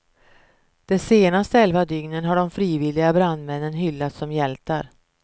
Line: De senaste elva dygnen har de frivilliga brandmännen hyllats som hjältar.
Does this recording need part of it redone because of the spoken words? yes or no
no